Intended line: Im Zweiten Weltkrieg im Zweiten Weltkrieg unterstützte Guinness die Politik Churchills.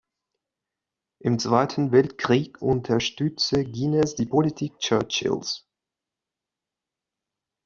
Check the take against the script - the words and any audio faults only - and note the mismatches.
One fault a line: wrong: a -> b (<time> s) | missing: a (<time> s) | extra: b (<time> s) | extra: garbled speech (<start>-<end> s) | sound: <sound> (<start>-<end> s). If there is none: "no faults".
missing: im Zweiten Weltkrieg (2.6 s)